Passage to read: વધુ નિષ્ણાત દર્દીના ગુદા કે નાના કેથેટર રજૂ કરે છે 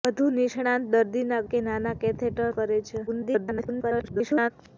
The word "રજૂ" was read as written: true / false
false